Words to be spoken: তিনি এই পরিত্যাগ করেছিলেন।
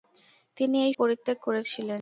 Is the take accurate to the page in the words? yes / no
yes